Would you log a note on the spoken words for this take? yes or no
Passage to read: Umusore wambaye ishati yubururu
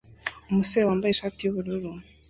no